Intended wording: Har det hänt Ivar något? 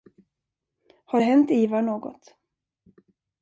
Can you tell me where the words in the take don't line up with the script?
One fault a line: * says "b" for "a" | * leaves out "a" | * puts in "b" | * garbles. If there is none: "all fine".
all fine